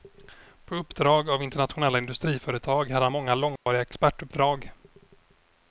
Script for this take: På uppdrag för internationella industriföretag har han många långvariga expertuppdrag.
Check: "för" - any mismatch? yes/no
yes